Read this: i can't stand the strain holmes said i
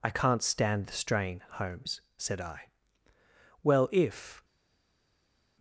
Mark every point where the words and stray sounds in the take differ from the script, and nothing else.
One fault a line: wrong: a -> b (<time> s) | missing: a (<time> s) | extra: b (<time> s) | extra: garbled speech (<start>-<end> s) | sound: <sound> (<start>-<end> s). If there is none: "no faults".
extra: well if (3.6 s)